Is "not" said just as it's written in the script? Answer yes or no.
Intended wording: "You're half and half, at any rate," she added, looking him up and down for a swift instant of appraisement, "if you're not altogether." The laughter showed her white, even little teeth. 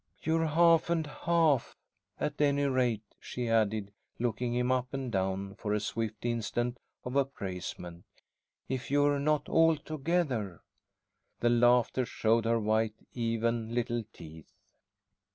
yes